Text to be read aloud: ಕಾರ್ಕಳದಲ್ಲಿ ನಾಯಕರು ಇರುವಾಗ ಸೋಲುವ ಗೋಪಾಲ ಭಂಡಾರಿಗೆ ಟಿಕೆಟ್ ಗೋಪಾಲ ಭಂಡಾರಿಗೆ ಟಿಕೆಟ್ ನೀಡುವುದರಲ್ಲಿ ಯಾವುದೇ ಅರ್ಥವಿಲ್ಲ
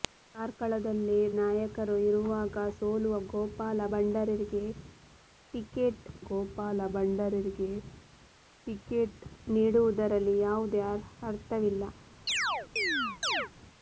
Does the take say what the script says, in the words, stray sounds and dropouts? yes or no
no